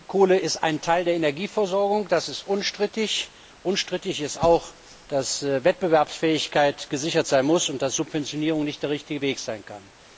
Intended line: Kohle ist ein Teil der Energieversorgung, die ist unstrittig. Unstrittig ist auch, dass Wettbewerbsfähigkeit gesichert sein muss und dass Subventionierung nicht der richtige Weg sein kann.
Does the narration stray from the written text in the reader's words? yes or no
yes